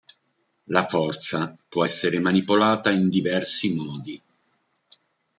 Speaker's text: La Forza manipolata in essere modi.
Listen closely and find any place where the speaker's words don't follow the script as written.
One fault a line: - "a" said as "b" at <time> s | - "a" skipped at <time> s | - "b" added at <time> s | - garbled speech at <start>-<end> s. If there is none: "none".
- "può essere" added at 1.7 s
- "essere" said as "diversi" at 3.1 s